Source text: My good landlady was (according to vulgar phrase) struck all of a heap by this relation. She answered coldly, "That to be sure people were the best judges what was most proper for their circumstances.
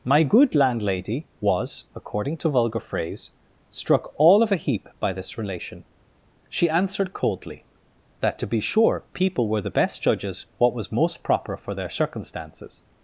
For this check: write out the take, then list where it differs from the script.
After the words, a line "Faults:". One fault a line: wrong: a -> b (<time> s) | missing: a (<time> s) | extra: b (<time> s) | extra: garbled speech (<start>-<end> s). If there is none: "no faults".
My good landlady was (according to vulgar phrase) struck all of a heap by this relation. She answered coldly, "That to be sure people were the best judges what was most proper for their circumstances.
Faults:
no faults